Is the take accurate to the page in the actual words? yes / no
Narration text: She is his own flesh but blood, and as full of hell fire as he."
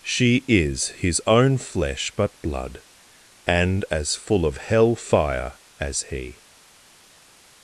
yes